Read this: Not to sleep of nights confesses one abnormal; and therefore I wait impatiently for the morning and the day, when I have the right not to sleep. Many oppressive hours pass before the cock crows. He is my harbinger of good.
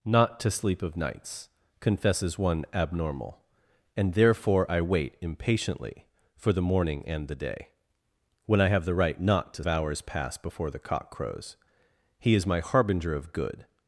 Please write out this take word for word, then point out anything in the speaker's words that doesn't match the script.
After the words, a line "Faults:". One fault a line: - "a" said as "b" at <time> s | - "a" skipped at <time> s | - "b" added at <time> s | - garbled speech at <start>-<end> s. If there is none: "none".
Not to sleep of nights confesses one abnormal; and therefore I wait impatiently for the morning and the day, when I have the right not to hours pass before the cock crows. He is my harbinger of good.
Faults:
- "sleep Many oppressive" skipped at 9.6 s